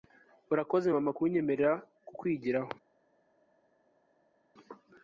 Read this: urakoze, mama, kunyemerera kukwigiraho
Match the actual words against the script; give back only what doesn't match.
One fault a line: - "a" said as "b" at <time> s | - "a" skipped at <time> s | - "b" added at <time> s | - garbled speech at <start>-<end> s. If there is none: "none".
none